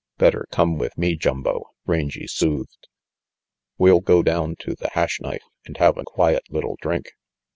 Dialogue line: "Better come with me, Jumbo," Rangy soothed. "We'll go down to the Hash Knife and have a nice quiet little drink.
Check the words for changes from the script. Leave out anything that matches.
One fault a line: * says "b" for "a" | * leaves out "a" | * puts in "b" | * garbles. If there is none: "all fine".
* leaves out "nice"